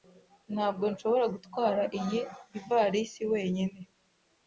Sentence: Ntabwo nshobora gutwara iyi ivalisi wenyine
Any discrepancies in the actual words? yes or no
no